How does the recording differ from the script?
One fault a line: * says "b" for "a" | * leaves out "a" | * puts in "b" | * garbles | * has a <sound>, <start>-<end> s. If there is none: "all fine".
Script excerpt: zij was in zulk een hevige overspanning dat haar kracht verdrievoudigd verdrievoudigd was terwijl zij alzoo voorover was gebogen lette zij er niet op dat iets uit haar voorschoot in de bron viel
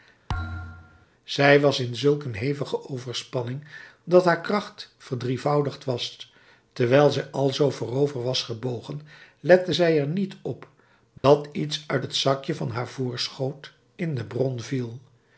* has a thud, 0.3-1.1 s
* leaves out "verdrievoudigd"
* has a dropout, 11.2-11.2 s
* puts in "het zakje van"